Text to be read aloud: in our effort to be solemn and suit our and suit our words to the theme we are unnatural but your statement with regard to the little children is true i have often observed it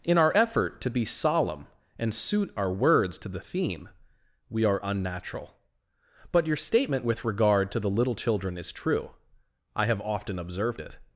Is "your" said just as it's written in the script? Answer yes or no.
yes